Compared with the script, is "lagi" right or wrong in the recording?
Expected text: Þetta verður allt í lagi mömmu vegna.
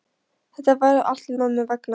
wrong